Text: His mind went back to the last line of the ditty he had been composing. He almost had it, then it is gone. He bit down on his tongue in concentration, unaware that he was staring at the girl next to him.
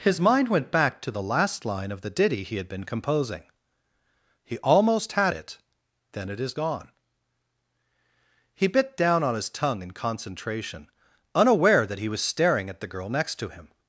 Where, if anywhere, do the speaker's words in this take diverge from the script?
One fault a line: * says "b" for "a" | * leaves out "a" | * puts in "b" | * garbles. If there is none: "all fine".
all fine